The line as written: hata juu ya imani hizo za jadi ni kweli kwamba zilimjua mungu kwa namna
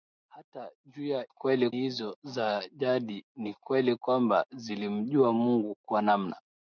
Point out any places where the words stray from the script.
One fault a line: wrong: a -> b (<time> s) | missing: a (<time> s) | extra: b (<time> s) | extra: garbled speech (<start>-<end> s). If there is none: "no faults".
wrong: imani -> kweli (1.3 s)